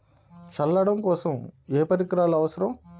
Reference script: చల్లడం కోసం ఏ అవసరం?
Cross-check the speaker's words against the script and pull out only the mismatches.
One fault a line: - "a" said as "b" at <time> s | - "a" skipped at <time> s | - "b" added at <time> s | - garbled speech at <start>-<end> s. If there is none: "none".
- "పరికరాలు" added at 1.8 s